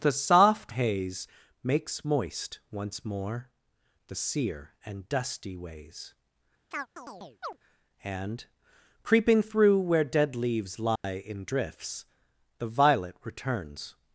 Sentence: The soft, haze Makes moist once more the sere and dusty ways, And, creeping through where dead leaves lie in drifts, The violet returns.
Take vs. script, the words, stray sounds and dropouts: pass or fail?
fail